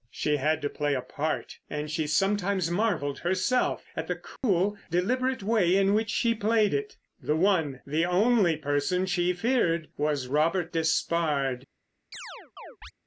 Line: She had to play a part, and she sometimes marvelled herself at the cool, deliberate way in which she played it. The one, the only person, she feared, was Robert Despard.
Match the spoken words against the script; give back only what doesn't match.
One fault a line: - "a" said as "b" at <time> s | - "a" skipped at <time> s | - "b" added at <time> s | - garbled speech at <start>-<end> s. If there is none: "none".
none